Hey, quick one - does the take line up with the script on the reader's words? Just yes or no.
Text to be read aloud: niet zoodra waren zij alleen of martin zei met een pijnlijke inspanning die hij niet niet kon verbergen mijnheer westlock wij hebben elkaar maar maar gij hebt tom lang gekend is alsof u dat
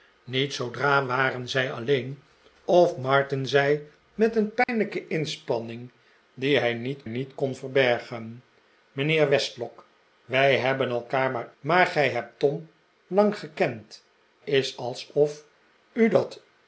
yes